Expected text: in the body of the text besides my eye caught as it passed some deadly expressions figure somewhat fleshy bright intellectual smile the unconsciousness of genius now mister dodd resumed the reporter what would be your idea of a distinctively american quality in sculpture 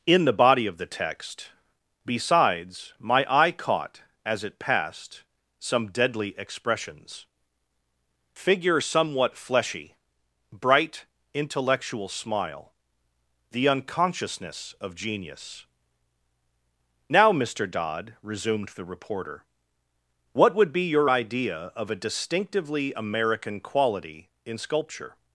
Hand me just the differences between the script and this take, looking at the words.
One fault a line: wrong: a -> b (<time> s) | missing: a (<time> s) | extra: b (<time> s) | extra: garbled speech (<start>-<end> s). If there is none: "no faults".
no faults